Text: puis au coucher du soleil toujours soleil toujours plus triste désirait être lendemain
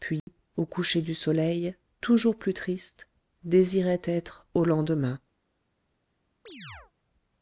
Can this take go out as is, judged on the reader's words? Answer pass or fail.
fail